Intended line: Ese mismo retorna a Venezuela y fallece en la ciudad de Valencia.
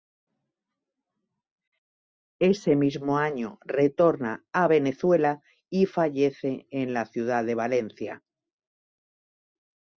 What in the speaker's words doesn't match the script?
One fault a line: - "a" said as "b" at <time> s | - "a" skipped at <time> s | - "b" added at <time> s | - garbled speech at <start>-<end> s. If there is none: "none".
- "año" added at 3.2 s